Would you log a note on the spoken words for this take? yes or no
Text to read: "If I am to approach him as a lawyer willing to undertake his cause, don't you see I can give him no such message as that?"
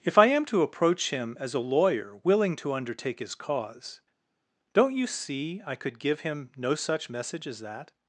yes